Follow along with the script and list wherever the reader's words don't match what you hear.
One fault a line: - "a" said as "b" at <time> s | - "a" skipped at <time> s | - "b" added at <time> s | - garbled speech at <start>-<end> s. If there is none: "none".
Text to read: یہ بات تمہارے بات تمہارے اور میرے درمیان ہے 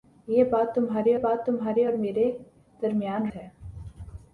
none